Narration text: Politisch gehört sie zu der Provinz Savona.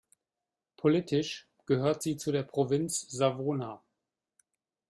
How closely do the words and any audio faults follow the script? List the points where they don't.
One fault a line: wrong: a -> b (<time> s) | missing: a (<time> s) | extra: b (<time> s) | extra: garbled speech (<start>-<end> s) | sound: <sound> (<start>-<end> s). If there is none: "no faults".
no faults